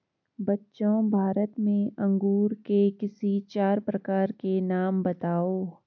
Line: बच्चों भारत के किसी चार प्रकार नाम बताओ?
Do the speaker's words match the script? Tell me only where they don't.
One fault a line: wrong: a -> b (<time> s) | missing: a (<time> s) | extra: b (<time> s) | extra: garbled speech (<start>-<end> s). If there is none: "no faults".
extra: में अंगूर (1.6 s)
extra: के (4.3 s)